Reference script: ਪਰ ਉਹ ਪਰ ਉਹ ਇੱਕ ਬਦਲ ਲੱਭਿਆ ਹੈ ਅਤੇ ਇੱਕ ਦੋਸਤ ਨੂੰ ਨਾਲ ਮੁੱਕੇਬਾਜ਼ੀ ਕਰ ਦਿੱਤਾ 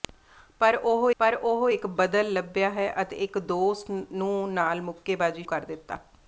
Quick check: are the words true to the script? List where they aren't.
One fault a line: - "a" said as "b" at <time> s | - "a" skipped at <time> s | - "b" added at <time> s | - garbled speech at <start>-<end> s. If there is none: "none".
none